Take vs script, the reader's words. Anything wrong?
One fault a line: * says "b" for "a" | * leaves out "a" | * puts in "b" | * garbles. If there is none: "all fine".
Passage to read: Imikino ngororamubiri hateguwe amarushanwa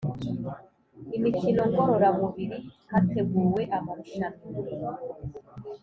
all fine